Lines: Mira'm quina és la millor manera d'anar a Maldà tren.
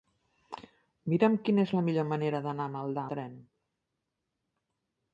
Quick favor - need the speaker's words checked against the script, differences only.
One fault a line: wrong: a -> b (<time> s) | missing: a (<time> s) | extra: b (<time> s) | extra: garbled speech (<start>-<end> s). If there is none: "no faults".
no faults